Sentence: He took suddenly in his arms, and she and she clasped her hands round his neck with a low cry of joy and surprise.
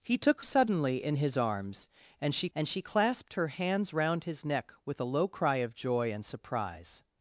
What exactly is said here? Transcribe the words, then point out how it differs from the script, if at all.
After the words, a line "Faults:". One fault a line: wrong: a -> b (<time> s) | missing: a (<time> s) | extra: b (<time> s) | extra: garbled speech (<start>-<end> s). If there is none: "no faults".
He took suddenly in his arms, and she and she clasped her hands round his neck with a low cry of joy and surprise.
Faults:
no faults